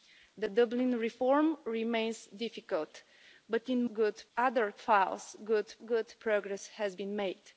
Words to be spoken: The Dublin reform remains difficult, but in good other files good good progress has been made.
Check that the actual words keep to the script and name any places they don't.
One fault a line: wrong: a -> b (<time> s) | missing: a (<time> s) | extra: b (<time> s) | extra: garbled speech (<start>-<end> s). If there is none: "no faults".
no faults